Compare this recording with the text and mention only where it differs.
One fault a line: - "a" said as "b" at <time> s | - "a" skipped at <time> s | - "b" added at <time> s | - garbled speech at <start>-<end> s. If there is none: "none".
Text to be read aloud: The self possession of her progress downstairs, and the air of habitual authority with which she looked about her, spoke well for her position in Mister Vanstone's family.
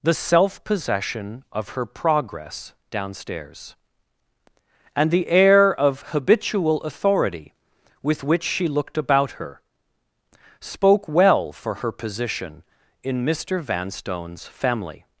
none